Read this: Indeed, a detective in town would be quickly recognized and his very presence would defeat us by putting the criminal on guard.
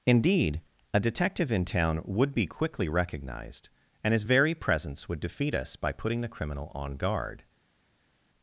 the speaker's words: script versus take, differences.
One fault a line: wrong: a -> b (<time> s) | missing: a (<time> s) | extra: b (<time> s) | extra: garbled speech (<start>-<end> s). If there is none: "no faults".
no faults